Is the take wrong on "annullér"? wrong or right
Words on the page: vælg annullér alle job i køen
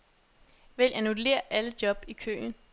right